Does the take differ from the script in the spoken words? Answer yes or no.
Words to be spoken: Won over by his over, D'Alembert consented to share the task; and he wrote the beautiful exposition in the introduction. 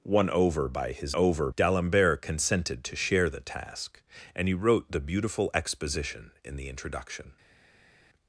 no